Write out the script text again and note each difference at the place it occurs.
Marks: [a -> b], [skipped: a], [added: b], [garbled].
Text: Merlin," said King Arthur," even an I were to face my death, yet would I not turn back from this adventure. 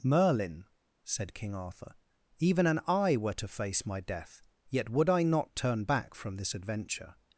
Merlin," said King Arthur," even an I were to face my death, yet would I not turn back from this adventure.